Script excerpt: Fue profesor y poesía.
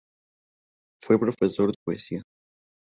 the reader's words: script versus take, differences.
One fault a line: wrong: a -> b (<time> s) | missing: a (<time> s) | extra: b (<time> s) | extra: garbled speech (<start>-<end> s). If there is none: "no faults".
no faults